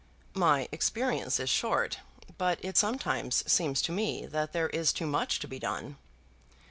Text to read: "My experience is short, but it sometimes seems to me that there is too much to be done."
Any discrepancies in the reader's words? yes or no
no